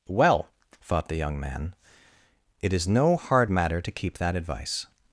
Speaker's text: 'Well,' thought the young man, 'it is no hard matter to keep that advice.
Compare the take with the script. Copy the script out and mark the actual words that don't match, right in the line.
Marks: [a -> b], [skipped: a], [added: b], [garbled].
'Well,' thought the young man, 'it is no hard matter to keep that advice.